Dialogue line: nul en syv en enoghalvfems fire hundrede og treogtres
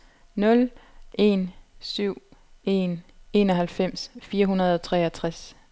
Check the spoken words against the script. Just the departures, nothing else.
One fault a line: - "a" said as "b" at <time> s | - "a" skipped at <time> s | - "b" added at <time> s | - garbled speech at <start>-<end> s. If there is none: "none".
none